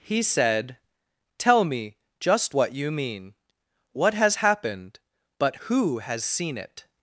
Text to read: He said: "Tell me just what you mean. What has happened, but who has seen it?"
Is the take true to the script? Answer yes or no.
yes